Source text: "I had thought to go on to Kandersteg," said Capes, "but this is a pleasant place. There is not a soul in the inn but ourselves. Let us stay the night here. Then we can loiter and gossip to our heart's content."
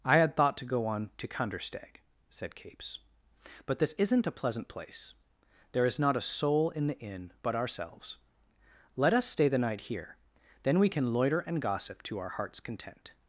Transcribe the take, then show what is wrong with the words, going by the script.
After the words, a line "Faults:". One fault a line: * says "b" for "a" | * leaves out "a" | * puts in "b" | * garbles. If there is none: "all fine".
"I had thought to go on to Kandersteg," said Capes, "but this isn't a pleasant place. There is not a soul in the inn but ourselves. Let us stay the night here. Then we can loiter and gossip to our heart's content."
Faults:
* says "isn't" for "is"